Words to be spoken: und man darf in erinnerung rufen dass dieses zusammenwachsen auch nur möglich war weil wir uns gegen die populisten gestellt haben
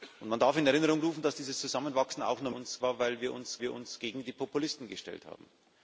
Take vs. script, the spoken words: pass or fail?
fail